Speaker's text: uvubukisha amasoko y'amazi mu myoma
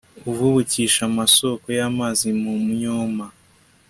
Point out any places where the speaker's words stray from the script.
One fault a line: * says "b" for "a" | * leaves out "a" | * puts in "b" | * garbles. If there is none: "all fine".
all fine